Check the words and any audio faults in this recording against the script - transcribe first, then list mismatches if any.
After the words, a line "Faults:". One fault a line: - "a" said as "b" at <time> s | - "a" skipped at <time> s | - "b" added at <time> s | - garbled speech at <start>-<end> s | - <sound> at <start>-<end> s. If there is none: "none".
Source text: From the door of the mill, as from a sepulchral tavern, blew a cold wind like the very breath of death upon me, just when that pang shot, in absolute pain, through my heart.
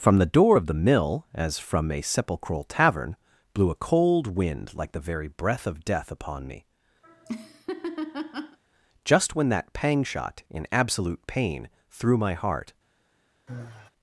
From the door of the mill, as from a sepulchral tavern, blew a cold wind like the very breath of death upon me, just when that pang shot, in absolute pain, through my heart.
Faults:
- laugh at 7.0-8.6 s
- sigh at 13.5-13.9 s